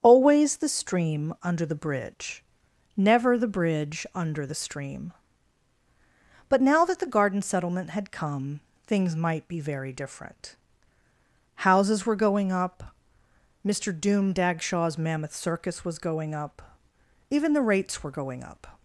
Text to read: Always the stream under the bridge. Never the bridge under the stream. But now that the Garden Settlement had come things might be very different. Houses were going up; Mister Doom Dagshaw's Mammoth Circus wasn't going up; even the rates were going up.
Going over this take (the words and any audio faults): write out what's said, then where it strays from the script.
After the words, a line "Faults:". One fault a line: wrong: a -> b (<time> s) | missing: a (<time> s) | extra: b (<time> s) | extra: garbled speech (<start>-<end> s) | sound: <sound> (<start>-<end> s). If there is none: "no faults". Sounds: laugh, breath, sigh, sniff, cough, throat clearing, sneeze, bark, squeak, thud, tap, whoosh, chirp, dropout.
Always the stream under the bridge. Never the bridge under the stream. But now that the Garden Settlement had come things might be very different. Houses were going up; Mister Doom Dagshaw's Mammoth Circus was going up; even the rates were going up.
Faults:
wrong: wasn't -> was (15.8 s)